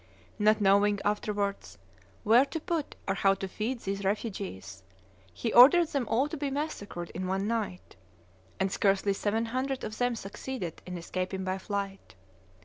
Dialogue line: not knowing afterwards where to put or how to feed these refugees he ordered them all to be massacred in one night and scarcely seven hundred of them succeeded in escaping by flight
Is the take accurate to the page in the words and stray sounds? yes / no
yes